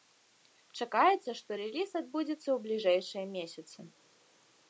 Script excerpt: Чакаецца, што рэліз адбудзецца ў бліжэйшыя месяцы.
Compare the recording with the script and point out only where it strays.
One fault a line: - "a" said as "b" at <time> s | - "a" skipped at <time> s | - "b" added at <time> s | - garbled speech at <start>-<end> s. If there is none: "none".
none